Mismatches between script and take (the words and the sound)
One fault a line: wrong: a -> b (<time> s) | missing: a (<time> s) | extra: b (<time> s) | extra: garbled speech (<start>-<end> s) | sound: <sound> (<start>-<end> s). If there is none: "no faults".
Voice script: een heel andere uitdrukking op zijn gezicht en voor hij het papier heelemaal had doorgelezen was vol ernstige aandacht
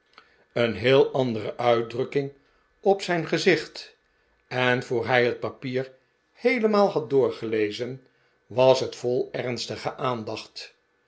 extra: het (8.8 s)